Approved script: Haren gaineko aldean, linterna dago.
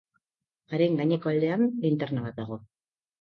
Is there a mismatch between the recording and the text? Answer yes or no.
yes